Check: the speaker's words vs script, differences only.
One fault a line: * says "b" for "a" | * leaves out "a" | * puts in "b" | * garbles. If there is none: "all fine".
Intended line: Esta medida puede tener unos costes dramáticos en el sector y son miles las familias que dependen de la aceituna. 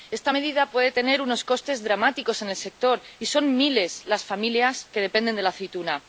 all fine